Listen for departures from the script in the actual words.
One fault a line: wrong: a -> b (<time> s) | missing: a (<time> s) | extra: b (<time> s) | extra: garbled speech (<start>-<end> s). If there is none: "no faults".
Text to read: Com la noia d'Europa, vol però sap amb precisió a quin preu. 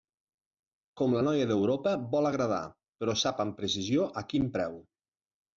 extra: agradar (2.3 s)